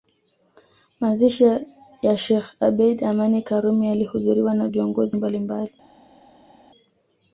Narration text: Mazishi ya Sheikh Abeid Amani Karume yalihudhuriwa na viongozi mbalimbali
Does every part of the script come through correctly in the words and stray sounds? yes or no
yes